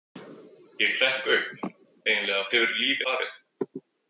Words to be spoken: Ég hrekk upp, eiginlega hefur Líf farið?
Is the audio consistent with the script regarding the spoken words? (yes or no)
yes